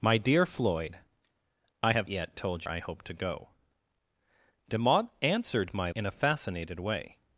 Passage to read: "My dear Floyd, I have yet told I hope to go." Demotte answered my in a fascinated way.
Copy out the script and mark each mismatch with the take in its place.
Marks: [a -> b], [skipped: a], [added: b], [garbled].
"My dear Floyd, I have yet told I hope to go." Demotte answered my in a fascinated way.